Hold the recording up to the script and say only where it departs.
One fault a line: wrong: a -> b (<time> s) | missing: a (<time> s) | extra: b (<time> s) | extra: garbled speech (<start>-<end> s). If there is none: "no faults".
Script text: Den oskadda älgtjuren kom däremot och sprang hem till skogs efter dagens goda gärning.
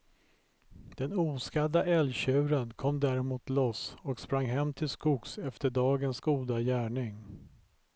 extra: loss (3.5 s)